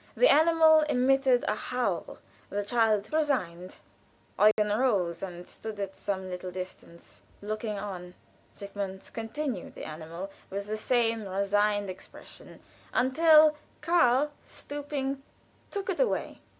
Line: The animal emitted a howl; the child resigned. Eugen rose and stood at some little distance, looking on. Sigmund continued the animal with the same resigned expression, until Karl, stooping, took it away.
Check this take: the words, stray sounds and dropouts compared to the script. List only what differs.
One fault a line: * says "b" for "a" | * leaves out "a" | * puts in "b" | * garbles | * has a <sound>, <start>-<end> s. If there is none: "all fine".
* has a dropout, 4.5-4.6 s